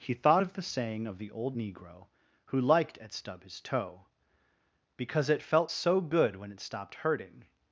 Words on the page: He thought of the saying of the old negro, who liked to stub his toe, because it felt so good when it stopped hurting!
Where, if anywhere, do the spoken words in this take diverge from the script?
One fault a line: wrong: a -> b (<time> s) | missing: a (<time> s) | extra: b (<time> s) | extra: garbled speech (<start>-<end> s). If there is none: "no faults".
wrong: to -> at (3.0 s)